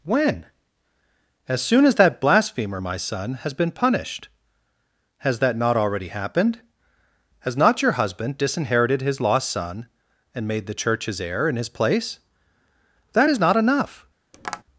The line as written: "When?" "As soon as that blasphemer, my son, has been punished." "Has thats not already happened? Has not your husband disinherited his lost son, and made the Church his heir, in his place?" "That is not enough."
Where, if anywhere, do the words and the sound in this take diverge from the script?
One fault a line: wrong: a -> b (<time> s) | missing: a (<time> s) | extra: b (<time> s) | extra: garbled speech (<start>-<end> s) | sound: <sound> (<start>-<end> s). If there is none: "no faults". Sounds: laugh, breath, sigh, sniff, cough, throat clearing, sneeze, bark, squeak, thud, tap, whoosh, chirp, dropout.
wrong: thats -> that (5.4 s)
sound: tap (14.3-14.6 s)